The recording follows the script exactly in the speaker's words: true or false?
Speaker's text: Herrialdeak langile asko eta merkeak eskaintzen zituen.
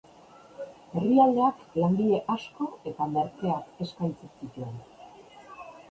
true